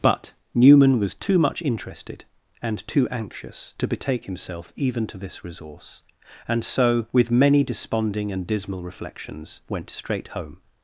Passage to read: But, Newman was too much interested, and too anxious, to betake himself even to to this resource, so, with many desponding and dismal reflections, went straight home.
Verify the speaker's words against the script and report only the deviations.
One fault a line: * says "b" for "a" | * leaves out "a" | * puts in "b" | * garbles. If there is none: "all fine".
* leaves out "to"
* puts in "and"